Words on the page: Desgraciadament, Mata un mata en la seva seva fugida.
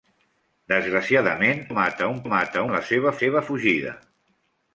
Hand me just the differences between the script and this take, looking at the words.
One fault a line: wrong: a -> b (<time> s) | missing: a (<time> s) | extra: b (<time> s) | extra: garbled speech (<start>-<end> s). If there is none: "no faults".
no faults